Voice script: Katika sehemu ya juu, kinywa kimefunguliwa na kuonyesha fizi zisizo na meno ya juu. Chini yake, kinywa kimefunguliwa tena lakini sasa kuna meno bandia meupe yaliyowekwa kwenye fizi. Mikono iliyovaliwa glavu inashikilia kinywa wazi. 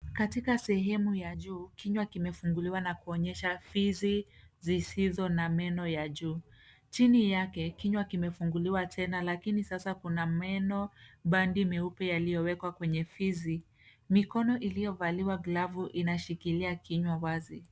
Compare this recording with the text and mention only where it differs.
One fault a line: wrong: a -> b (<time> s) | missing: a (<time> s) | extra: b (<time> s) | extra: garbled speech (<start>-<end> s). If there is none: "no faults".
no faults